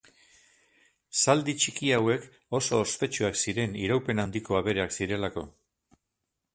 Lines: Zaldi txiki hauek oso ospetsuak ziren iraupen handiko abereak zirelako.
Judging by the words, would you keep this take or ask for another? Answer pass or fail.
pass